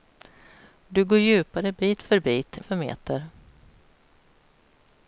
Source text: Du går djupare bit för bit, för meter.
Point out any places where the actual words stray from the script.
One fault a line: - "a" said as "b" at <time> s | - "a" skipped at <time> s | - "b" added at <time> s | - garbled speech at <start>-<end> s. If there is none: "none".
none